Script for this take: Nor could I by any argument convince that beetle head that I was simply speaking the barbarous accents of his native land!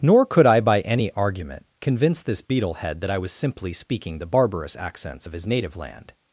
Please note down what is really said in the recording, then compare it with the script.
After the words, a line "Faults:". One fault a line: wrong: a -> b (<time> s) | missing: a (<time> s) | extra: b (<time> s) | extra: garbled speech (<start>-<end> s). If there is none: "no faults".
Nor could I by any argument convince this beetle head that I was simply speaking the barbarous accents of his native land!
Faults:
wrong: that -> this (2.2 s)